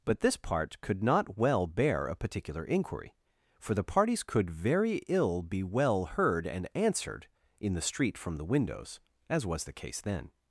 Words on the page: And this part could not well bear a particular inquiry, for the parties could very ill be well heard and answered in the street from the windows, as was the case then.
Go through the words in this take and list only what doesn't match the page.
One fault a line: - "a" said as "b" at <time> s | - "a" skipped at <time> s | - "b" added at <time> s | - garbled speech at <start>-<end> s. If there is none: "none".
- "And" said as "But" at 0.0 s